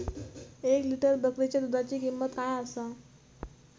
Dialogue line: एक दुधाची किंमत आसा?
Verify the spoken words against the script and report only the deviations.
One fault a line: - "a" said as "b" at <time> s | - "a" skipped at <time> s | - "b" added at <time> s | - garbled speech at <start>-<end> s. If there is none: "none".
- "लिटर बकरीच्या" added at 0.8 s
- "काय" added at 2.4 s